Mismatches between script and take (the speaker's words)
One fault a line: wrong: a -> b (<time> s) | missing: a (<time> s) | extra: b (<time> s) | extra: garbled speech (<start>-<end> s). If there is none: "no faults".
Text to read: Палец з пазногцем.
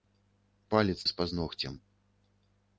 no faults